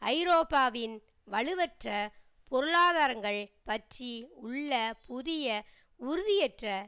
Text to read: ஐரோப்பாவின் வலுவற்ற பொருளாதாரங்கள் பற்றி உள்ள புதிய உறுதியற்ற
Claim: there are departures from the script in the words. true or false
false